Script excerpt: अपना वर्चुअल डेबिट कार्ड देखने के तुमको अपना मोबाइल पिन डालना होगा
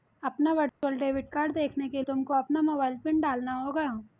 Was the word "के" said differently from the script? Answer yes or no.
no